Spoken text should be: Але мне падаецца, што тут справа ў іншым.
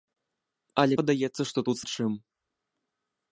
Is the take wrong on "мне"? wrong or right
wrong